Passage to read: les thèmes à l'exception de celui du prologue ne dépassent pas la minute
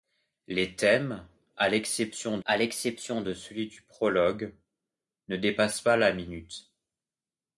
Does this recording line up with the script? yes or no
no